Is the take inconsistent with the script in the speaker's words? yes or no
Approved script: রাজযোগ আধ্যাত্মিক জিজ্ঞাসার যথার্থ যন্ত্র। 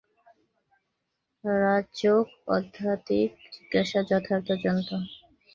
no